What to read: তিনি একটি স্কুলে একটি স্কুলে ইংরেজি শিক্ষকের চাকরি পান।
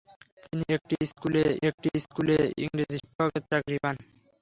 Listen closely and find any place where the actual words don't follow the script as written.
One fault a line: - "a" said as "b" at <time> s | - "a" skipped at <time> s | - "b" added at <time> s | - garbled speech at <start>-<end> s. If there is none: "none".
none